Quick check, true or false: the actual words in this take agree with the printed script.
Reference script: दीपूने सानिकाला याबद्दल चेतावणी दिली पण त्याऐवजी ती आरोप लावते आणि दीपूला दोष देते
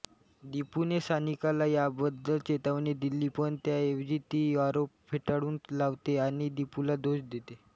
false